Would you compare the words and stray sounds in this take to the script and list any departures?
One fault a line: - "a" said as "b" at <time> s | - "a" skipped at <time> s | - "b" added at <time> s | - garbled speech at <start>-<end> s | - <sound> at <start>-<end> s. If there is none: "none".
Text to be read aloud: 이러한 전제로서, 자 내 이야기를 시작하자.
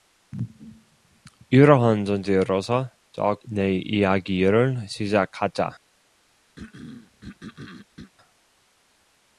- throat clearing at 6.6-8.1 s